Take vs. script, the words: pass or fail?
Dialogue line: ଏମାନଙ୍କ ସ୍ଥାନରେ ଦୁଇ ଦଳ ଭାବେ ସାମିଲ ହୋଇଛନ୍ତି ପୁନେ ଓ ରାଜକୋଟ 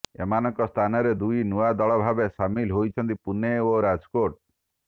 fail